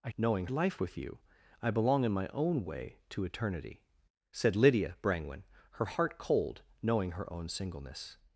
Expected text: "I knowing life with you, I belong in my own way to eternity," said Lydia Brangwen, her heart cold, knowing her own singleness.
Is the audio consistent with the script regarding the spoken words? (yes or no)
yes